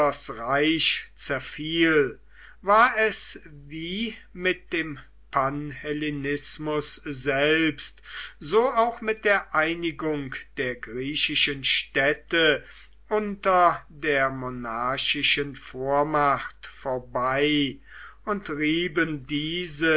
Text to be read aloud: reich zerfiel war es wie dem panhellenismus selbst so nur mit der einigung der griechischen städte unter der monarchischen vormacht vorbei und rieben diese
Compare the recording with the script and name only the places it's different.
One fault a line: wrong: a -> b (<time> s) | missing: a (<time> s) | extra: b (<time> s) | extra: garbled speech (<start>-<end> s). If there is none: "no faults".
extra: mit (4.3 s)
wrong: nur -> auch (8.7 s)